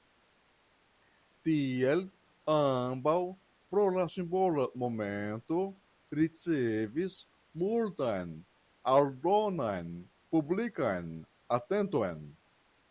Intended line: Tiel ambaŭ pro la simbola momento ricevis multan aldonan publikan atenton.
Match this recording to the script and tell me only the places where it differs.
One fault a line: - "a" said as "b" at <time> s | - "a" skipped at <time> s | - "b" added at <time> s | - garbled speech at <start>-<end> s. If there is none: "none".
none